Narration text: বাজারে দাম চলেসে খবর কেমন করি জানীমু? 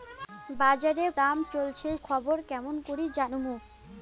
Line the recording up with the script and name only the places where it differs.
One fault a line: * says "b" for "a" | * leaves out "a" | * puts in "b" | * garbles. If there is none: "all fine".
all fine